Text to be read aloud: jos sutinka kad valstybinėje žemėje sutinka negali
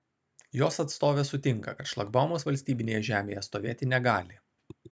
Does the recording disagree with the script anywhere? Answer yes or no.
yes